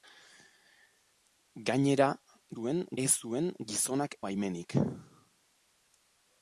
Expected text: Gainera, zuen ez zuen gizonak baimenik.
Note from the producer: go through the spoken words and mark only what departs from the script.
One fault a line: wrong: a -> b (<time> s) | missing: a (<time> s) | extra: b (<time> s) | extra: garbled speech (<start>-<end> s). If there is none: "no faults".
no faults